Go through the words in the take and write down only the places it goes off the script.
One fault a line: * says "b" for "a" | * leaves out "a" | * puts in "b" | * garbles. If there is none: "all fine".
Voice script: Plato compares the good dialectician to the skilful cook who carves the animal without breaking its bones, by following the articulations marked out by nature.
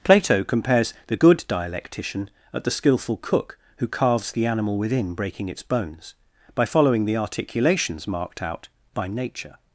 * says "at" for "to"
* says "within" for "without"